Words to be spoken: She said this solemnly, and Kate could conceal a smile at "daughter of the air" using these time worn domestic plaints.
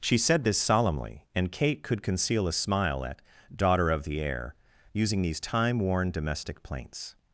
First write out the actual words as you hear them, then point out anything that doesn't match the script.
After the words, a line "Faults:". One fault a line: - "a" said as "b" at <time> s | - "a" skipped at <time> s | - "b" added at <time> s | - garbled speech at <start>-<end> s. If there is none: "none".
She said this solemnly, and Kate could conceal a smile at "daughter of the air" using these time worn domestic plaints.
Faults:
none